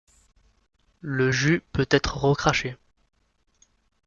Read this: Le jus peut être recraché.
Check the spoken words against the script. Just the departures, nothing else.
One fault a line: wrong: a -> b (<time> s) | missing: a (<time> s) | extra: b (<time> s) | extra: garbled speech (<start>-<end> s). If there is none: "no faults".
no faults